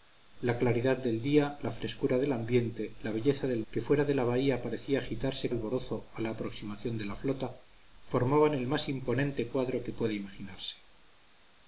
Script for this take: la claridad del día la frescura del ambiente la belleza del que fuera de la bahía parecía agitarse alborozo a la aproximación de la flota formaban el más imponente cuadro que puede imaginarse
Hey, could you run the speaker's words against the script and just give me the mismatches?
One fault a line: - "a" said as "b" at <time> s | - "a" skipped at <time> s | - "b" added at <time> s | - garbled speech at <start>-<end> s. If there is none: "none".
none